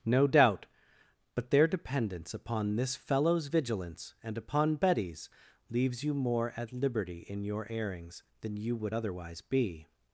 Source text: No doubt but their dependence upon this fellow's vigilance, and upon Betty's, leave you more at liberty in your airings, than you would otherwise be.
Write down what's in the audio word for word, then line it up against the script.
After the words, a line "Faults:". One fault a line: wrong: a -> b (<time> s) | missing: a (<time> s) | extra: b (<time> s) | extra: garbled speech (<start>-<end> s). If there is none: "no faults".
No doubt but their dependence upon this fellow's vigilance, and upon Betty's, leaves you more at liberty in your airings, than you would otherwise be.
Faults:
wrong: leave -> leaves (5.7 s)